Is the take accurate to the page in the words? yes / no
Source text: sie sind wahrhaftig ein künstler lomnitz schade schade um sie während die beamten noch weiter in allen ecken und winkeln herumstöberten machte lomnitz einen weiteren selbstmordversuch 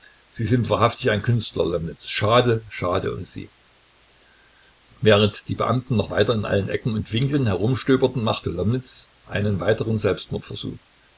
yes